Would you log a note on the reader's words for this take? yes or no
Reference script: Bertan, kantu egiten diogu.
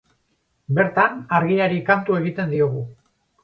yes